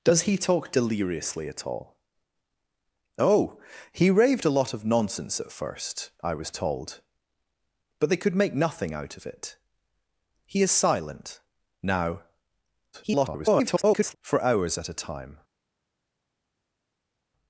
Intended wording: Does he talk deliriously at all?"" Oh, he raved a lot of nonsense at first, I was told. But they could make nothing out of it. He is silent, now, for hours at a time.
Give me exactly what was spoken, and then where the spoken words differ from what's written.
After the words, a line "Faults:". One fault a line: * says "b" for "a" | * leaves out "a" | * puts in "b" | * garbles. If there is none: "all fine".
Does he talk deliriously at all?"" Oh, he raved a lot of nonsense at first, I was told. But they could make nothing out of it. He is silent, now, [garbled] for hours at a time.
Faults:
* garbles